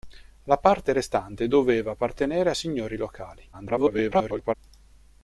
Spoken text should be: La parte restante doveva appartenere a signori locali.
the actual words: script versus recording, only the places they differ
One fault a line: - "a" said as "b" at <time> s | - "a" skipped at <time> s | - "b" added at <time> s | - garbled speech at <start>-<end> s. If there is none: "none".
- garbled speech at 3.5-4.5 s